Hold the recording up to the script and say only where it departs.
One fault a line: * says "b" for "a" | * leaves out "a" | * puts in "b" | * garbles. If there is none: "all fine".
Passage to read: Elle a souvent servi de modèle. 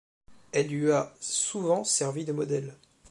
* puts in "lui"